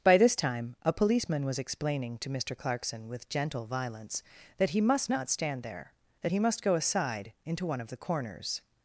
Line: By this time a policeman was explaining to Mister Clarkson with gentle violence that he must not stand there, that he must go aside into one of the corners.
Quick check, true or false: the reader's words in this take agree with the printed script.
true